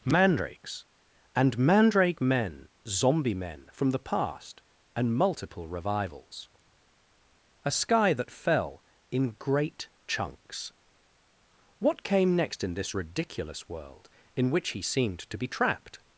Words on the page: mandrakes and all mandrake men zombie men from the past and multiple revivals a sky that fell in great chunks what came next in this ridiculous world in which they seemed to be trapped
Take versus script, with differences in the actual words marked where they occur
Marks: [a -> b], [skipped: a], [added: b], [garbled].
mandrakes and [skipped: all] mandrake men zombie men from the past and multiple revivals a sky that fell in great chunks what came next in this ridiculous world in which [they -> he] seemed to be trapped